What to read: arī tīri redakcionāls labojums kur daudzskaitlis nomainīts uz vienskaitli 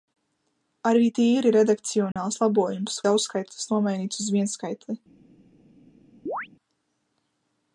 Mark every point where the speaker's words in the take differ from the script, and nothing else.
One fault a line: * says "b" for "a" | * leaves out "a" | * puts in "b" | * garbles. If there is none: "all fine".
* leaves out "kur"